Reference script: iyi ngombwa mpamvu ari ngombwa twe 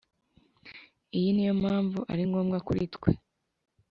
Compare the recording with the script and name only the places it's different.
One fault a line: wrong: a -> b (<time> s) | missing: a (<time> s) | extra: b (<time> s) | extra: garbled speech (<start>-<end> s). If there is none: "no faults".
wrong: ngombwa -> niyo (1.4 s)
extra: kuri (2.7 s)